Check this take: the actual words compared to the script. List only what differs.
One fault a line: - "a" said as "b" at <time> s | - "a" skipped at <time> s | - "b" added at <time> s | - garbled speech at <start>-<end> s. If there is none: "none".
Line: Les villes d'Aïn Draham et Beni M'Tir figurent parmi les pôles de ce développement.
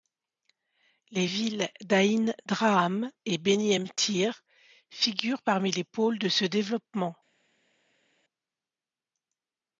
none